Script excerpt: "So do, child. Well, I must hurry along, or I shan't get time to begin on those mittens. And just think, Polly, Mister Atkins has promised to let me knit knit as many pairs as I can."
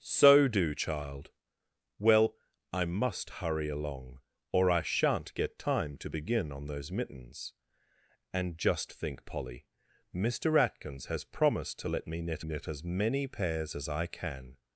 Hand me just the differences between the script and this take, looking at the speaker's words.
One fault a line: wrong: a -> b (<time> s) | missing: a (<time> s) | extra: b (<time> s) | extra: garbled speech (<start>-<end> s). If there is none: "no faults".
no faults